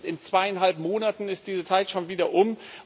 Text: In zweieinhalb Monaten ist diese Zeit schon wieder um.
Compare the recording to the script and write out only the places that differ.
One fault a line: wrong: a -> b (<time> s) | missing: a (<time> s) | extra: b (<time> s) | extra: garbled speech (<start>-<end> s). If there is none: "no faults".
no faults